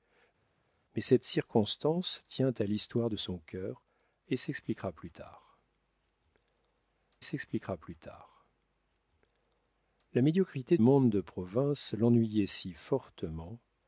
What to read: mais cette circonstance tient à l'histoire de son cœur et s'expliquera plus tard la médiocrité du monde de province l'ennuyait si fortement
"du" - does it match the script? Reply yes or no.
no